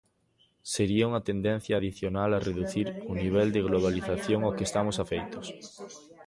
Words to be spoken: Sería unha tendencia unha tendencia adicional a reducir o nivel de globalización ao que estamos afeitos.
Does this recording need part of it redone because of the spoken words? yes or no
yes